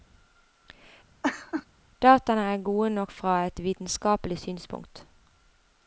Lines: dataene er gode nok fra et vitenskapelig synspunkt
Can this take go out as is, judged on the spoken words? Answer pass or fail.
pass